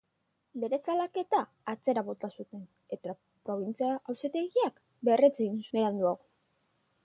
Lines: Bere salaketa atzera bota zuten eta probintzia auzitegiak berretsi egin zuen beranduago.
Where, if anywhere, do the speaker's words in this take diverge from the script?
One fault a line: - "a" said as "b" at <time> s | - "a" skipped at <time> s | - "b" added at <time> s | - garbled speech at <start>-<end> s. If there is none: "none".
- "zuen" skipped at 5.6 s